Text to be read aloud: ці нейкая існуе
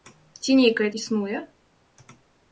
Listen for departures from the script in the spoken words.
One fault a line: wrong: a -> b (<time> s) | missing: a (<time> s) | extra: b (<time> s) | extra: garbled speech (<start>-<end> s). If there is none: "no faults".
no faults